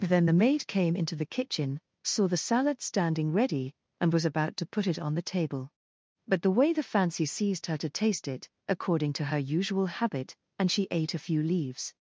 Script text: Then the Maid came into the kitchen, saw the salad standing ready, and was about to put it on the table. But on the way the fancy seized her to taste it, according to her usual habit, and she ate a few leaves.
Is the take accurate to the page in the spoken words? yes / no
no